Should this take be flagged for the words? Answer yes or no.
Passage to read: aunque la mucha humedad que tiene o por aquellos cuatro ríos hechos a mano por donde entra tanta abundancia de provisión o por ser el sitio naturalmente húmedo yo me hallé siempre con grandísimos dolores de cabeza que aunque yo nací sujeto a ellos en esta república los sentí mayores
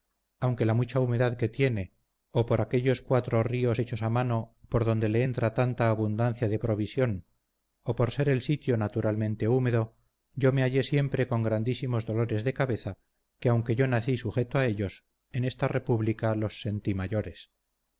yes